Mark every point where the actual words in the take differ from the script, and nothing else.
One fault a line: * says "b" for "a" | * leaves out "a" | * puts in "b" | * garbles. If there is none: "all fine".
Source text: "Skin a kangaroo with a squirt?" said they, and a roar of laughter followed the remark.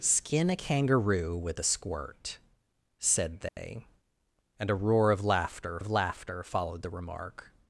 * puts in "of laughter"